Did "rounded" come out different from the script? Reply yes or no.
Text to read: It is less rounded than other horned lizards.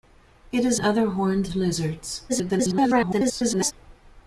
yes